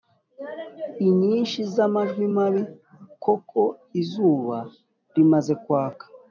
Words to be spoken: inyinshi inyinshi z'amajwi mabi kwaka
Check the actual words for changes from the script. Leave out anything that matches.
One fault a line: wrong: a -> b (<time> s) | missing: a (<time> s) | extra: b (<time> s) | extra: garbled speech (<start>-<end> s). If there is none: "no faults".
missing: inyinshi (1.6 s)
extra: koko Izuba rimaze (3.2 s)